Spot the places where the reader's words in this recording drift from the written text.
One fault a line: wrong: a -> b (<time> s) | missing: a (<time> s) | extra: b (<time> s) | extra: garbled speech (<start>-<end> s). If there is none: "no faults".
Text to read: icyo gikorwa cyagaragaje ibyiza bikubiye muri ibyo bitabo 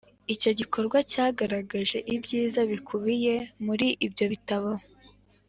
no faults